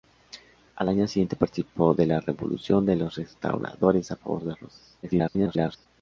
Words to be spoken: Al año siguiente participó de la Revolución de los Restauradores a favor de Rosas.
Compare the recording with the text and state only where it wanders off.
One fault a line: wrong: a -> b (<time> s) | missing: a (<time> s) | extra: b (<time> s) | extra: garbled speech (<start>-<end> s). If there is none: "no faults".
extra: garbled speech (5.0-5.9 s)